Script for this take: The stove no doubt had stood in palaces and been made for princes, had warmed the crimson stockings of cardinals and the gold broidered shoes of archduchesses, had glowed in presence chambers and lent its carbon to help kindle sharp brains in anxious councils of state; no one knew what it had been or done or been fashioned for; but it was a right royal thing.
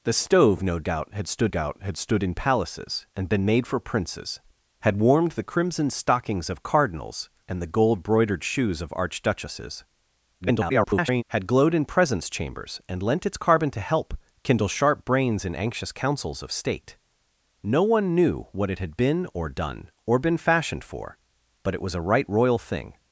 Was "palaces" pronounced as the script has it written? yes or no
yes